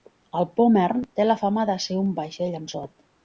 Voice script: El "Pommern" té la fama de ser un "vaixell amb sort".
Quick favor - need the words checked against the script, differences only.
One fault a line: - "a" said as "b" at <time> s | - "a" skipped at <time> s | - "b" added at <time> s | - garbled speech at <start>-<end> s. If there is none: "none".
none